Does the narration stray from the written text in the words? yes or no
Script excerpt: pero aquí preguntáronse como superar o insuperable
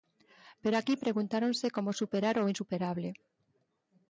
no